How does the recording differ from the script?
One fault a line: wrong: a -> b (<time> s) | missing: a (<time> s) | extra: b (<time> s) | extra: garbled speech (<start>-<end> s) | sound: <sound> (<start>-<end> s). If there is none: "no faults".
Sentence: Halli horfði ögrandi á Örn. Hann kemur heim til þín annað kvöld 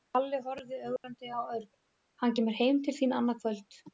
sound: dropout (1.0-1.0 s)